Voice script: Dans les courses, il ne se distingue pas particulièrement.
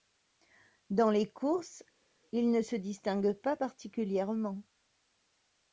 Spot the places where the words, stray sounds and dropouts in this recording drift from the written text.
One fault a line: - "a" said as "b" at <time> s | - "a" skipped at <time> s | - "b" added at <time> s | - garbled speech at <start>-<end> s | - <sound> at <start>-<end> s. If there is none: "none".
none